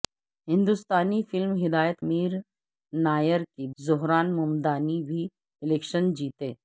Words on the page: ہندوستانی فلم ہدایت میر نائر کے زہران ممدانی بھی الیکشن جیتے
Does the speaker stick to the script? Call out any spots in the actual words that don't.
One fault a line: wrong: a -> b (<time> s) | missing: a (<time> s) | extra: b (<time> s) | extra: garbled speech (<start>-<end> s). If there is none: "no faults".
no faults